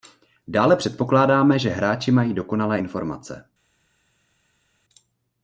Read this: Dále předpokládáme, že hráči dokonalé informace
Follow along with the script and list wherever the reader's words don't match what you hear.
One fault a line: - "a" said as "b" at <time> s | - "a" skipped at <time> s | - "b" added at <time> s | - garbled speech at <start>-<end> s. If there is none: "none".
- "mají" added at 2.1 s